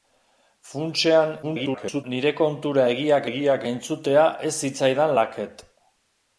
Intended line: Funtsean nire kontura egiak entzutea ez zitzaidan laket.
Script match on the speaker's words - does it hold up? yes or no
no